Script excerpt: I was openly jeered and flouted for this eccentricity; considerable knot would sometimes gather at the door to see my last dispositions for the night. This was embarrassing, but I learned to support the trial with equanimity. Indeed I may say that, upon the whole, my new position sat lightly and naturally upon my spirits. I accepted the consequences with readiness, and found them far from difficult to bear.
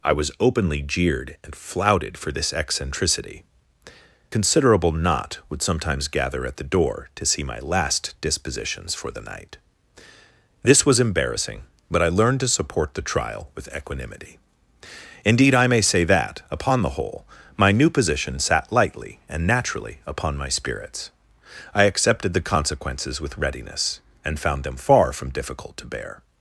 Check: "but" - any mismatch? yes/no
no